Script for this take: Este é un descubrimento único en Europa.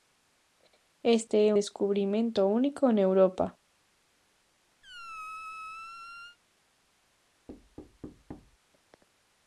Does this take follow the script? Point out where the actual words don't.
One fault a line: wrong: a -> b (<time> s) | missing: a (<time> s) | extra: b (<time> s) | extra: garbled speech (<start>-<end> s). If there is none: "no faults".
missing: un (1.5 s)